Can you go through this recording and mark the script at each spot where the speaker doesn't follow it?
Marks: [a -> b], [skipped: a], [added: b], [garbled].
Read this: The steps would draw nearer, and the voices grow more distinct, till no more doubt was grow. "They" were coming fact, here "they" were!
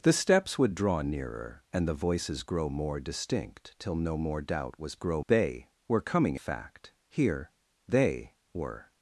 The steps would draw nearer, and the voices grow more distinct, till no more doubt was grow. "They" were coming fact, here "they" were!